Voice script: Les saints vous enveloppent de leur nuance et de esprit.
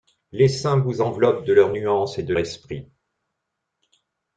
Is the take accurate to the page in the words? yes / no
yes